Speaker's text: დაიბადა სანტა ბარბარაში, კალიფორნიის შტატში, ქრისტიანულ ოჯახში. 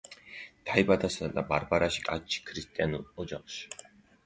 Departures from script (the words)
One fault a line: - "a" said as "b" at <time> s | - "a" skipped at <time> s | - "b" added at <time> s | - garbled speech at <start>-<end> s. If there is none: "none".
- "კალიფორნიის" skipped at 2.0 s